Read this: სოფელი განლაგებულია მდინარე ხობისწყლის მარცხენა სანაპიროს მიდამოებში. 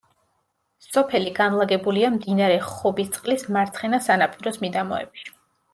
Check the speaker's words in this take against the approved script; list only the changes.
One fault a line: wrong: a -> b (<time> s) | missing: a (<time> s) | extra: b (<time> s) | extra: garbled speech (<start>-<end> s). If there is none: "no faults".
no faults